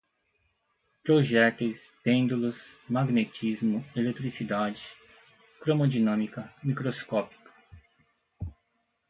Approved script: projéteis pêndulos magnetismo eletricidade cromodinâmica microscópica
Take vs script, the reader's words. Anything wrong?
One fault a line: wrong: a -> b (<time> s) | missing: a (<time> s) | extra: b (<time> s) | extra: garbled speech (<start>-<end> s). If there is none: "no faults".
no faults